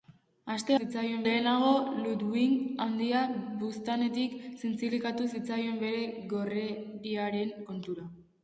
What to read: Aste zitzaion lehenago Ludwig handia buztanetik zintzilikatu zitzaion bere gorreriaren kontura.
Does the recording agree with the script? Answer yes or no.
yes